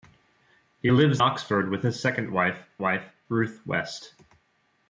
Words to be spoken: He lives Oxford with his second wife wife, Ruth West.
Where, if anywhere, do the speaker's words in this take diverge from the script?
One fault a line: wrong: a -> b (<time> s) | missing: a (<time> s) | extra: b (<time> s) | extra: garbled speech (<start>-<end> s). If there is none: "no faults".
no faults